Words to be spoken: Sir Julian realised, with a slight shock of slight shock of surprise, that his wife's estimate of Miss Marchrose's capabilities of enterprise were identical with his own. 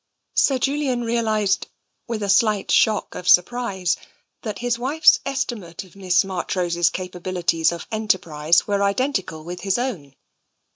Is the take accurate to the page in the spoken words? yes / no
no